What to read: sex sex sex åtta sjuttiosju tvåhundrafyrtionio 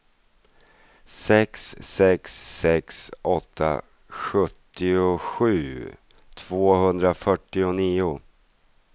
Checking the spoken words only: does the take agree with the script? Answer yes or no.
yes